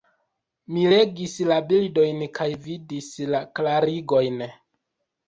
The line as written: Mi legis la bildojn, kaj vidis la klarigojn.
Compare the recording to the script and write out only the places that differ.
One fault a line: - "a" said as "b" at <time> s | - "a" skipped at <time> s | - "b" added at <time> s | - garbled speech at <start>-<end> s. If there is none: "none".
none